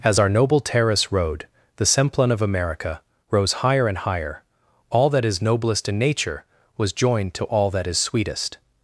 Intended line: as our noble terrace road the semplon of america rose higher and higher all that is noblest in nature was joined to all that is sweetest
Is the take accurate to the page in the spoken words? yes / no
yes